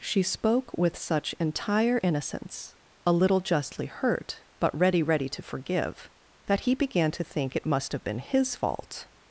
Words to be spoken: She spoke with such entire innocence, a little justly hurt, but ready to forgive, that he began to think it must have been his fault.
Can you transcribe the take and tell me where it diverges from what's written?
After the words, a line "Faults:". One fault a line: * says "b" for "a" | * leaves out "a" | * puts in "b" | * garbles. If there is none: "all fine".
She spoke with such entire innocence, a little justly hurt, but ready ready to forgive, that he began to think it must have been his fault.
Faults:
* puts in "ready"